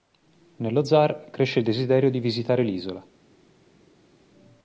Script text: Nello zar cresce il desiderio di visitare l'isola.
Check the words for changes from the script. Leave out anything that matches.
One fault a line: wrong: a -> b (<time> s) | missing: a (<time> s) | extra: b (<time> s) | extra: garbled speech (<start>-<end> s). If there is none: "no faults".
no faults